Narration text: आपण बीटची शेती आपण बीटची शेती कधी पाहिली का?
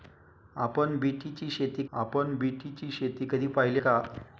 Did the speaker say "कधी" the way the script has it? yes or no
yes